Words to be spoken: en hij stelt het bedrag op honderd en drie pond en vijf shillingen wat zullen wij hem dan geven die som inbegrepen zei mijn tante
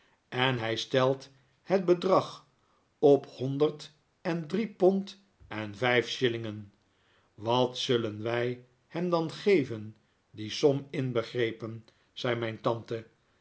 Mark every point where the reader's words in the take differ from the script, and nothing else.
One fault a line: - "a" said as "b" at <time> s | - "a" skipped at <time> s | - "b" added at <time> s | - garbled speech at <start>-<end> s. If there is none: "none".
none